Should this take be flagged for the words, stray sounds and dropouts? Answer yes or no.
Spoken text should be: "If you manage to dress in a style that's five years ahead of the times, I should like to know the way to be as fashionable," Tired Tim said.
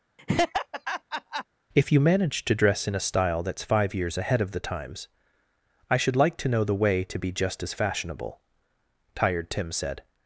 yes